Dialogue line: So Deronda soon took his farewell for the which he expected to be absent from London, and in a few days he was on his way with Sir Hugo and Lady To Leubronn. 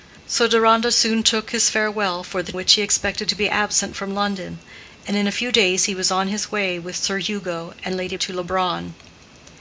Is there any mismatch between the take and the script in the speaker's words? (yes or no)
no